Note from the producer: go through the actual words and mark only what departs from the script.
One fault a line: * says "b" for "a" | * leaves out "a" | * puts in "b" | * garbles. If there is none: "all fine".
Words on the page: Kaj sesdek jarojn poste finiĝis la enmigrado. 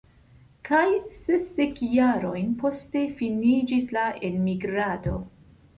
all fine